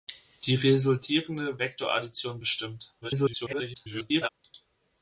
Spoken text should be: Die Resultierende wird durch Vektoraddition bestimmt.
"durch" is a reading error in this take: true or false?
true